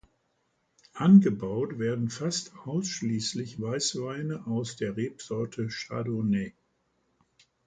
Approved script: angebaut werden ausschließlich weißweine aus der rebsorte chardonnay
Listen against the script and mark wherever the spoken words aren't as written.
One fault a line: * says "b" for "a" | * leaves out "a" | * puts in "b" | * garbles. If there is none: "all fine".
* puts in "fast"